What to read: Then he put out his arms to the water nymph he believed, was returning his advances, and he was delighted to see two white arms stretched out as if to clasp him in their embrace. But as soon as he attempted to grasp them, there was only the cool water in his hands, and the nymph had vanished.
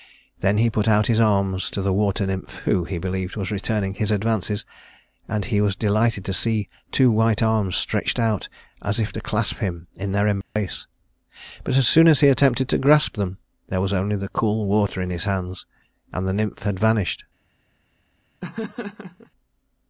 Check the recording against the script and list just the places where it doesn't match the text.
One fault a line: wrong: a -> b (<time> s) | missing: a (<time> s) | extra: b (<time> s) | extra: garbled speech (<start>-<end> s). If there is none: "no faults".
extra: who (2.6 s)